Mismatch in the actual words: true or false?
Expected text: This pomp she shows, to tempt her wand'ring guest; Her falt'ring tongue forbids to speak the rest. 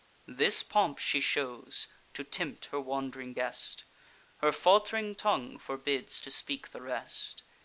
false